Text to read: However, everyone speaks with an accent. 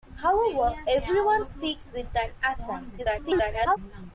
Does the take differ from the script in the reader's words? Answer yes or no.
yes